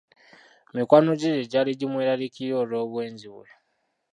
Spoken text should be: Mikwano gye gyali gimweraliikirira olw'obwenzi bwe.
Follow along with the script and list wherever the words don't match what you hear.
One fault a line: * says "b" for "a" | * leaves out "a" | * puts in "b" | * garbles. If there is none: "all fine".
all fine